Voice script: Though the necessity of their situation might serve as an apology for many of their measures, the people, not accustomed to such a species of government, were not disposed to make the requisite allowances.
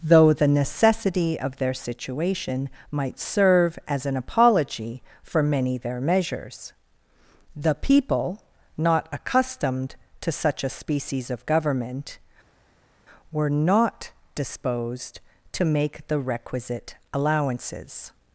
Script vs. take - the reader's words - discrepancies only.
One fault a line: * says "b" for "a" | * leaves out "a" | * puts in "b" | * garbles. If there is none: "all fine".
* leaves out "of"